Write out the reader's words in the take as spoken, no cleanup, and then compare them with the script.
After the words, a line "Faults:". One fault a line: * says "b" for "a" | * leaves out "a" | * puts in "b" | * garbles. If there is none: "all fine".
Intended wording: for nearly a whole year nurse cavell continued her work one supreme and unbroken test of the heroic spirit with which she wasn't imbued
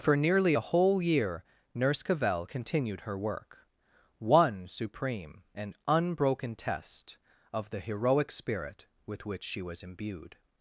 for nearly a whole year nurse cavell continued her work one supreme and unbroken test of the heroic spirit with which she was imbued
Faults:
* says "was" for "wasn't"